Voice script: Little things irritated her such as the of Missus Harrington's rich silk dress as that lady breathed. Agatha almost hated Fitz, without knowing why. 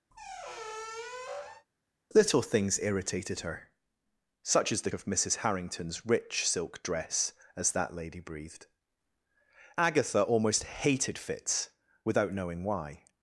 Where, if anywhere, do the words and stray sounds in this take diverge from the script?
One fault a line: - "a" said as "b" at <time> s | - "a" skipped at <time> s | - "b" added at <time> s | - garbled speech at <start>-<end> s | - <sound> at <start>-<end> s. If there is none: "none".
- squeak at 0.1-1.7 s